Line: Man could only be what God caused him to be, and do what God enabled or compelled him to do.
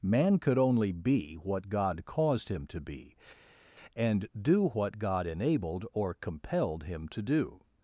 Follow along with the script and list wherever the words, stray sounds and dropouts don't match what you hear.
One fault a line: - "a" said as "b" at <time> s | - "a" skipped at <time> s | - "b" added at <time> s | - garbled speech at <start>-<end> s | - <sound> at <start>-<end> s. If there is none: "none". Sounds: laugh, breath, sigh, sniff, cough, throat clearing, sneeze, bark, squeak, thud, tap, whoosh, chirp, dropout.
none